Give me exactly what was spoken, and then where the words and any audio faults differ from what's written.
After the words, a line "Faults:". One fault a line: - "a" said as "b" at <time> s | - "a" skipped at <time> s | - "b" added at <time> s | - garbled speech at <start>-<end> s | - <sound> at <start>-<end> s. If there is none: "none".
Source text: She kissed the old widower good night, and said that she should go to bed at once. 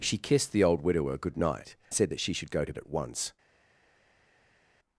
She kissed the old widower good night, said that she should go to at once.
Faults:
- "and" skipped at 1.8 s
- "bed" skipped at 2.7 s